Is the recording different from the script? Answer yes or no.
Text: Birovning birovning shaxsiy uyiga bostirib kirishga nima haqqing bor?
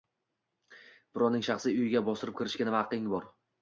yes